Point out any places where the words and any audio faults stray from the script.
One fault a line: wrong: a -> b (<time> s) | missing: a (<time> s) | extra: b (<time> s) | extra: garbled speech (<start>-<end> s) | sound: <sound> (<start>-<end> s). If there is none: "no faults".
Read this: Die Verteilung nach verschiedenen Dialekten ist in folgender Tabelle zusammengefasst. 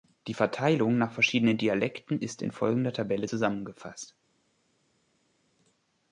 no faults